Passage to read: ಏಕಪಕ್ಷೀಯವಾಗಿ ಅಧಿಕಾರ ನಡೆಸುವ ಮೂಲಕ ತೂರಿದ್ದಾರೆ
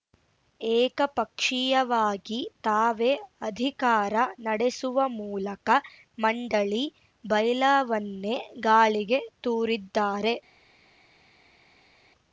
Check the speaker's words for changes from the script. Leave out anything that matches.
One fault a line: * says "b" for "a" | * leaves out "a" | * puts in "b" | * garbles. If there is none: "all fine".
* puts in "ತಾವೇ"
* puts in "ಮಂಡಳಿ ಬೈಲಾವನ್ನೇ ಗಾಳಿಗೆ"